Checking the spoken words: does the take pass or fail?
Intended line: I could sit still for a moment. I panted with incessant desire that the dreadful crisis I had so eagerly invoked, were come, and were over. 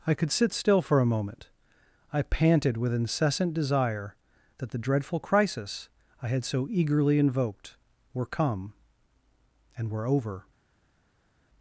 pass